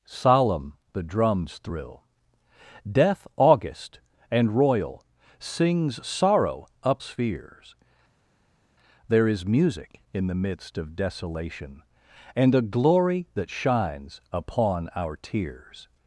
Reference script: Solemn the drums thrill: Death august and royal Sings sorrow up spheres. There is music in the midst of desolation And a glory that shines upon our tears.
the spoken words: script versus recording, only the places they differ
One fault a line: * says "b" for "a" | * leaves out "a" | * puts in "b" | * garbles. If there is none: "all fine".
all fine